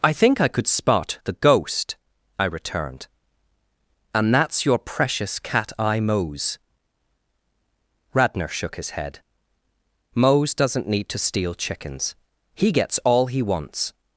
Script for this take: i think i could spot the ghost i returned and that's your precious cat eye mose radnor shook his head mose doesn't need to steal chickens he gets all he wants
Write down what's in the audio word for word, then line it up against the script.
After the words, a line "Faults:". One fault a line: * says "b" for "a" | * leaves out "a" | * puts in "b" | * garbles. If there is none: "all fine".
i think i could spot the ghost i returned and that's your precious cat eye mose radnor shook his head mose doesn't need to steal chickens he gets all he wants
Faults:
all fine